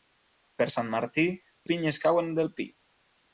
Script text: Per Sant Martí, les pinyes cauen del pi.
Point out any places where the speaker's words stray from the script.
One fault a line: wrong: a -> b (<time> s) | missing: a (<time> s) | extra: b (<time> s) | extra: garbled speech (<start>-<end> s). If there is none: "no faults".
missing: les (1.2 s)